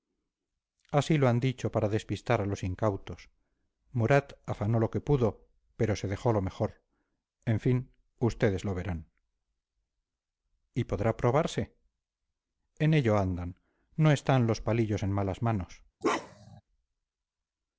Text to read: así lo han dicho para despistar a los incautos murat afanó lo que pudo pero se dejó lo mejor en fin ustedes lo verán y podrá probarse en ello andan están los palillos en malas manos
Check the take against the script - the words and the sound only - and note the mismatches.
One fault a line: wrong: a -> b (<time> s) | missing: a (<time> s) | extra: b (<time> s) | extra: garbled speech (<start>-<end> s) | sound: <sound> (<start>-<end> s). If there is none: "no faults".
extra: no (13.9 s)
sound: bark (16.0-16.6 s)